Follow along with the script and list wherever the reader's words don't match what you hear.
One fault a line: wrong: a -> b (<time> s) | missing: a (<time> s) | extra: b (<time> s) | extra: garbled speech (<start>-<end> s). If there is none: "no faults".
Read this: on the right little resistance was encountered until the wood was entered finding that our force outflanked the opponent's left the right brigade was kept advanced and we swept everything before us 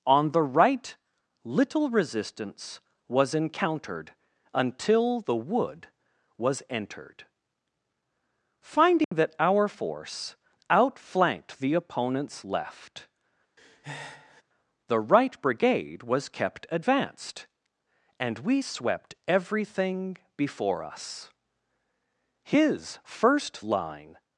extra: his first line (22.4 s)